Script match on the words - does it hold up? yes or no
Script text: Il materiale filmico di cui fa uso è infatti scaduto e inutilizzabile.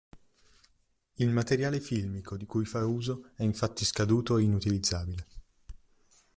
yes